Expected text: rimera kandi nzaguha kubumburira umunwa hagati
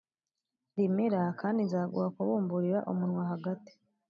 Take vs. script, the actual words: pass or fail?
pass